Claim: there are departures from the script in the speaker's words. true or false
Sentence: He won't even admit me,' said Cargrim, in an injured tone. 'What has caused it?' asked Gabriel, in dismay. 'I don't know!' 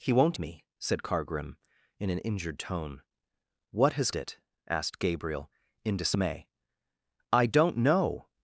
true